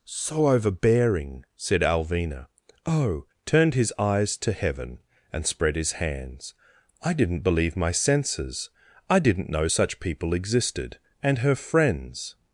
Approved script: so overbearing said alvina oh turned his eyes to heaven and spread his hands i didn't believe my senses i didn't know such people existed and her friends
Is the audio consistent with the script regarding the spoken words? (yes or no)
yes